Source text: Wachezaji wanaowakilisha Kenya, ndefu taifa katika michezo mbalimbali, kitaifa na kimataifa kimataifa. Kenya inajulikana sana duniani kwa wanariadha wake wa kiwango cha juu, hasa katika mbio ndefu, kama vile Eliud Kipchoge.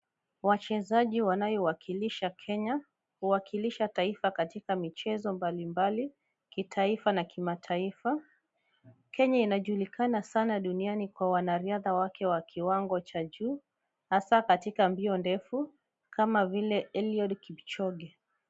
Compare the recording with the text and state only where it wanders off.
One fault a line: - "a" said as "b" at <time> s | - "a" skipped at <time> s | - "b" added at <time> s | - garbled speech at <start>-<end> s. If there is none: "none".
- "ndefu" said as "huwakilisha" at 3.2 s
- "kimataifa" skipped at 8.2 s